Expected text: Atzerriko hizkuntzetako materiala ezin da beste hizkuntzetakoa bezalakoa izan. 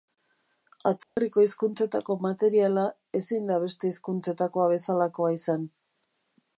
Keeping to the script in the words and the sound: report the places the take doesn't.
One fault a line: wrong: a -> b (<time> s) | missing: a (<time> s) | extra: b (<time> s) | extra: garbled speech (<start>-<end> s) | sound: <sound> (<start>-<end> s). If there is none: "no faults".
sound: dropout (1.0-1.2 s)